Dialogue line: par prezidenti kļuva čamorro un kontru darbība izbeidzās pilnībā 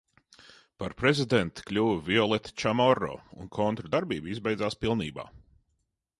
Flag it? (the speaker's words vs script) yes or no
yes